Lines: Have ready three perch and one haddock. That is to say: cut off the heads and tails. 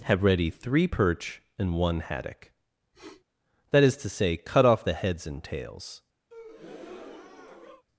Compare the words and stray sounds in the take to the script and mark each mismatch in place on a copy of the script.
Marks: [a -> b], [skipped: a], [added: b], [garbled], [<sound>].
Have ready three perch and one haddock. [sniff] That is to say: cut off the heads and tails. [breath]